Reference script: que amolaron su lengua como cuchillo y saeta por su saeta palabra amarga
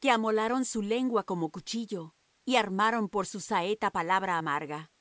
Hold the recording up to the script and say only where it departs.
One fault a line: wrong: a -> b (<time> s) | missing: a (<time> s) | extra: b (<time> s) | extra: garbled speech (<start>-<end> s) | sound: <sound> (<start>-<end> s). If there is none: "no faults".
wrong: saeta -> armaron (2.5 s)